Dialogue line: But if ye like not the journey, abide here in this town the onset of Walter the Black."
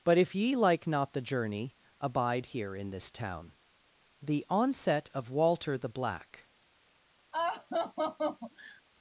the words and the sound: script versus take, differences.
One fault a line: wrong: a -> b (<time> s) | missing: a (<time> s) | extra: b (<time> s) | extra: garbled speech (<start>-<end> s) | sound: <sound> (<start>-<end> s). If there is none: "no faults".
sound: laugh (7.3-8.8 s)